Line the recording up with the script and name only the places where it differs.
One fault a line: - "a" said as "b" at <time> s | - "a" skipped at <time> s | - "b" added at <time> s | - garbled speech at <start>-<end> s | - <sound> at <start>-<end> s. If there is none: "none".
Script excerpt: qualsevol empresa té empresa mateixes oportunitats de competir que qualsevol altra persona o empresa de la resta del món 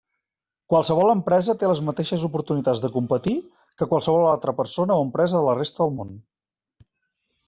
- "empresa" said as "les" at 1.7 s